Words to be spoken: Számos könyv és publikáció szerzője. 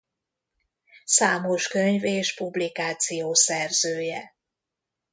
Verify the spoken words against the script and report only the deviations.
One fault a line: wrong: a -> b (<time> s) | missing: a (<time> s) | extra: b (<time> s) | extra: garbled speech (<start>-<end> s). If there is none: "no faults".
no faults